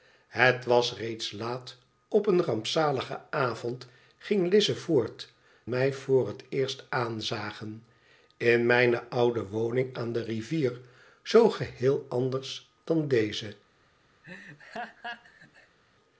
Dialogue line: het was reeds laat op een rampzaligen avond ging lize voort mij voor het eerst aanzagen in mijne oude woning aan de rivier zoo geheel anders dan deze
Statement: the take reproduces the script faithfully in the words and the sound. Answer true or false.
false